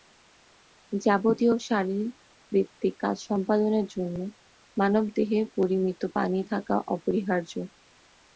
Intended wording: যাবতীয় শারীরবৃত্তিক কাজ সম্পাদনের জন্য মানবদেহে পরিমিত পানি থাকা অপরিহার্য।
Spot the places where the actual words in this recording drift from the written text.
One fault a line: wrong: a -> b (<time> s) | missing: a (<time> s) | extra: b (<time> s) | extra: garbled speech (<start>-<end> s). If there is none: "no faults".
no faults